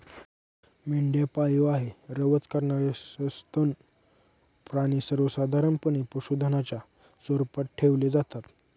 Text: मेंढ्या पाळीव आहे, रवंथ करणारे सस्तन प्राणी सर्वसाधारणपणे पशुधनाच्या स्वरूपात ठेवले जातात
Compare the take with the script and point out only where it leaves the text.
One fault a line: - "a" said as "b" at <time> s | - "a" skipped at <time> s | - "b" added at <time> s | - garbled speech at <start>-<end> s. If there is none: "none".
none